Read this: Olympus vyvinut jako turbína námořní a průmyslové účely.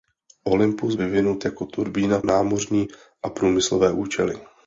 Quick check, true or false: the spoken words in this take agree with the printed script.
true